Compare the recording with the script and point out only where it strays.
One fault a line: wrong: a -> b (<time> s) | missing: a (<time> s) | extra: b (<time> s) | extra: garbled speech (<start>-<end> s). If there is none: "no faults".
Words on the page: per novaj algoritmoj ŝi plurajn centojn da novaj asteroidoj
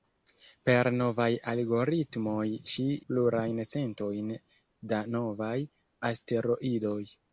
no faults